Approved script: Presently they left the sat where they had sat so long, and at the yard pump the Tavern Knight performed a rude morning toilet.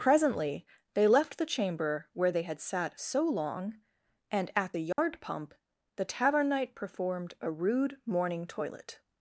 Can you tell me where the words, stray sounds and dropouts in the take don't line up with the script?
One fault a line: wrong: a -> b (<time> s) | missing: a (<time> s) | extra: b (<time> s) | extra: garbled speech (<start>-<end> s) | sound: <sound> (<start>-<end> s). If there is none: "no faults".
wrong: sat -> chamber (1.4 s)
sound: dropout (4.9-5.0 s)